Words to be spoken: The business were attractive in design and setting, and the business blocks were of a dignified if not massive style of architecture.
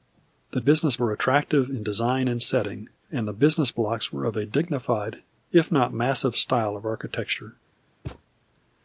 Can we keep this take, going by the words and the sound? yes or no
no